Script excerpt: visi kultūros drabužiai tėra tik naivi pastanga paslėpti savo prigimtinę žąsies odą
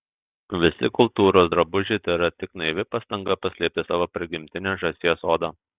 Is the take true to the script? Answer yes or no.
yes